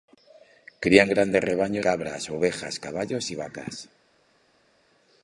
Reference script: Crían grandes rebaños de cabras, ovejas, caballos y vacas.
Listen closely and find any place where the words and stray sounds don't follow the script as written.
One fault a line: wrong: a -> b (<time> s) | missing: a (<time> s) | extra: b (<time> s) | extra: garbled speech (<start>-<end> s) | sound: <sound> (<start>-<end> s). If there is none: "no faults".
missing: de (1.9 s)